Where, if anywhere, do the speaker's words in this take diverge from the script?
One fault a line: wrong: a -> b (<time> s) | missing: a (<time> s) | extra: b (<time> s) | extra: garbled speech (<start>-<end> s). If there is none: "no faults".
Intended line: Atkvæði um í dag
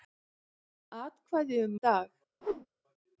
no faults